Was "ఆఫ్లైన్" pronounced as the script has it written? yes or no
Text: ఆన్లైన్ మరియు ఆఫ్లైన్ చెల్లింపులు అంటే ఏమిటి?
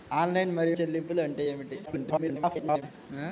no